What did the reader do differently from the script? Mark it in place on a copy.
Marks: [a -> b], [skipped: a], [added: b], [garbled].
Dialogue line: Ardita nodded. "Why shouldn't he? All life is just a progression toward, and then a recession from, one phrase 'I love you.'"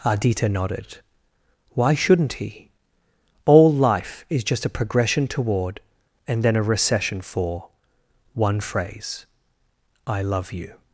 Ardita nodded. "Why shouldn't he? All life is just a progression toward, and then a recession [from, -> for] one phrase 'I love you.'"